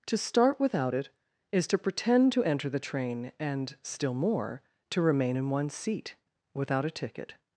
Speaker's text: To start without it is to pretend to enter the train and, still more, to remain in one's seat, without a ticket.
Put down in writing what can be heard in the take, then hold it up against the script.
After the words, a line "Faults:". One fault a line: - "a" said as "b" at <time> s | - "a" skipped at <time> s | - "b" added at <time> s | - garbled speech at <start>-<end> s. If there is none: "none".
To start without it is to pretend to enter the train and, still more, to remain in one's seat, without a ticket.
Faults:
none